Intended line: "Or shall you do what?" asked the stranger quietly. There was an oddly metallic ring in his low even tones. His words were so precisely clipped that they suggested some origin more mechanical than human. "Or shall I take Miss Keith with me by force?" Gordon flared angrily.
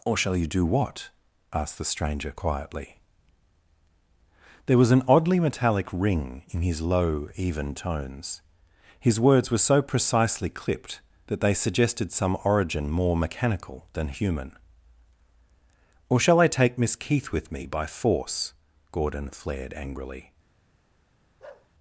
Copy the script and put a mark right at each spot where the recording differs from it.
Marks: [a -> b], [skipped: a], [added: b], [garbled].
"Or shall you do what?" asked the stranger quietly. There was an oddly metallic ring in his low even tones. His words were so precisely clipped that they suggested some origin more mechanical than human. "Or shall I take Miss Keith with me by force?" Gordon flared angrily.